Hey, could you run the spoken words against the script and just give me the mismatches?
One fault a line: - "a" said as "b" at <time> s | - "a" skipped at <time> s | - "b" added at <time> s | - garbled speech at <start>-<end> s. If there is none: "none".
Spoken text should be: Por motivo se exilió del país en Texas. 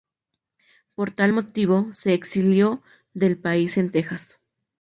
- "tal" added at 1.1 s